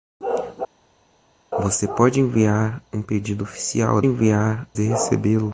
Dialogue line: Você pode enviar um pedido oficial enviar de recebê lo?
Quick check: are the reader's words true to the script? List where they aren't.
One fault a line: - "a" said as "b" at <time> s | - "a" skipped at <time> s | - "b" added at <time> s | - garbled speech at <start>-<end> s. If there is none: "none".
none